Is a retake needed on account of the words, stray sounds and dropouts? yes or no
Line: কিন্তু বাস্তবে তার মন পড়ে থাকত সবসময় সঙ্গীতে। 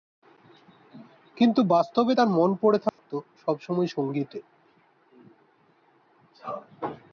yes